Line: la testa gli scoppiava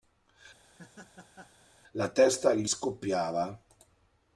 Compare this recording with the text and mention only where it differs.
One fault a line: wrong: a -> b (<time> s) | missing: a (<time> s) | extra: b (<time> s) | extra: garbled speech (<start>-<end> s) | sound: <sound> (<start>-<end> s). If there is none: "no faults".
sound: laugh (0.6-1.7 s)